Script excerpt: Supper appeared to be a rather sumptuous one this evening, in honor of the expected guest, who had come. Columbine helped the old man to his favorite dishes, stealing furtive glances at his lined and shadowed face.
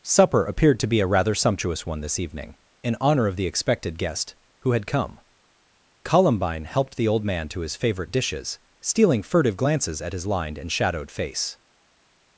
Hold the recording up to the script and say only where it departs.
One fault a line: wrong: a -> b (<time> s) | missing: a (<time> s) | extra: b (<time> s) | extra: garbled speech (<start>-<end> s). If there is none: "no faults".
no faults